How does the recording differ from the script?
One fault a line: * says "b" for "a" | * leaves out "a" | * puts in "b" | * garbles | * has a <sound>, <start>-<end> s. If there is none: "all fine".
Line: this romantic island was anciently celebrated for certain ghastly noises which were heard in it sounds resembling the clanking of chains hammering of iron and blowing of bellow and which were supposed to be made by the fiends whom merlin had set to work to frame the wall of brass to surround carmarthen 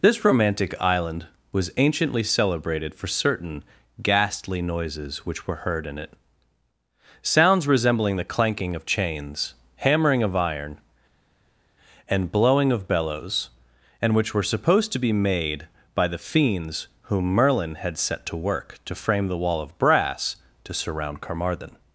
* says "bellows" for "bellow"